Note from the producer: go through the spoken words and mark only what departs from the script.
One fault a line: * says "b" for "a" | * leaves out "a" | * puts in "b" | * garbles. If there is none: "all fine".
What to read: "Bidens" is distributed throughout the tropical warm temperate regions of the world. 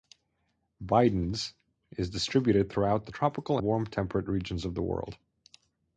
all fine